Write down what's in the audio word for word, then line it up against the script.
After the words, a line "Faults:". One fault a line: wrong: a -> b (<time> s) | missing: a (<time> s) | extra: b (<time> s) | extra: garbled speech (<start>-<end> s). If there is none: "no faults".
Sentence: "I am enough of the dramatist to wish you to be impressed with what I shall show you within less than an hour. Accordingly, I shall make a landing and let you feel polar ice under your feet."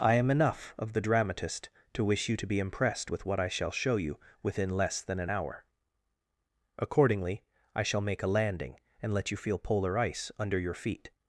"I am enough of the dramatist to wish you to be impressed with what I shall show you within less than an hour. Accordingly, I shall make a landing and let you feel polar ice under your feet."
Faults:
no faults